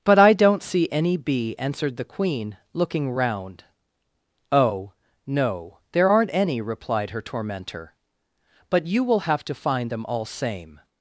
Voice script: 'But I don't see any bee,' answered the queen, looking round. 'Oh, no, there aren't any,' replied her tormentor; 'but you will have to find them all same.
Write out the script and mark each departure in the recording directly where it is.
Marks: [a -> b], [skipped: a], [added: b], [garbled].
'But I don't see any bee,' answered the queen, looking round. 'Oh, no, there aren't any,' replied her tormentor; 'but you will have to find them all same.